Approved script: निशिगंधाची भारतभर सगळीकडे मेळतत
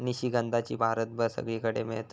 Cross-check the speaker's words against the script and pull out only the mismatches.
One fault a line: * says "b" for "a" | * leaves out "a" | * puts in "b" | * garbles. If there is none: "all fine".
all fine